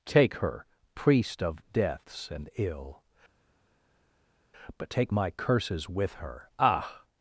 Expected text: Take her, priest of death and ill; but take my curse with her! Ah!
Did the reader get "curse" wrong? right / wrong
wrong